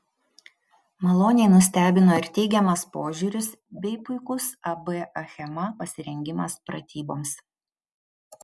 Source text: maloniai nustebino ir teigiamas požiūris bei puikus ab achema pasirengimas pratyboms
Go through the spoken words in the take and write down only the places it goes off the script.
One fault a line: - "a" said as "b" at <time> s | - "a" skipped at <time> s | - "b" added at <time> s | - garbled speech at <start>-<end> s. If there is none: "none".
none